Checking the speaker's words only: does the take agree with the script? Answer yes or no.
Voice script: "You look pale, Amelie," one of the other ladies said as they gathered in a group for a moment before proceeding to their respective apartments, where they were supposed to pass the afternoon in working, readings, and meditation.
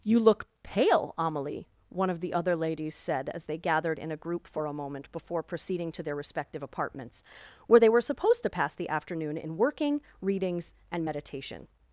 yes